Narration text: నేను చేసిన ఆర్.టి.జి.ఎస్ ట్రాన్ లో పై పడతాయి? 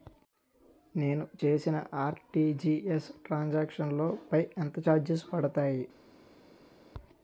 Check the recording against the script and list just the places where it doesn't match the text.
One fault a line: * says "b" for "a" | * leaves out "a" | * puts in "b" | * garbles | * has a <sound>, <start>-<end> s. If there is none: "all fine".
* puts in "సాంక్షన్"
* puts in "ఎంత చార్జెస్"